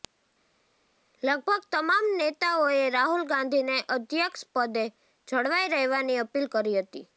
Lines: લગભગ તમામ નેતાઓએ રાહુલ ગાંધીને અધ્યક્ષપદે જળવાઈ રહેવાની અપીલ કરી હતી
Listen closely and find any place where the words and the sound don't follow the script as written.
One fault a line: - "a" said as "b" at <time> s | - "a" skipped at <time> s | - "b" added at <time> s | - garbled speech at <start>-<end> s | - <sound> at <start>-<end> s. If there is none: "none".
none